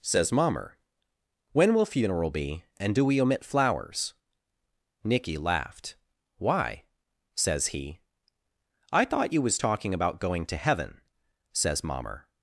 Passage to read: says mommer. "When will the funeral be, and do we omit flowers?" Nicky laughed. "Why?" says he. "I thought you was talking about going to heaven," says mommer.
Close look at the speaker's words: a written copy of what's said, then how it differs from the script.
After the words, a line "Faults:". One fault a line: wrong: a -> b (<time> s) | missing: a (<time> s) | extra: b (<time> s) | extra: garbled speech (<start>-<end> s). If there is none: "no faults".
says mommer. "When will funeral be, and do we omit flowers?" Nicky laughed. "Why?" says he. "I thought you was talking about going to heaven," says mommer.
Faults:
missing: the (1.9 s)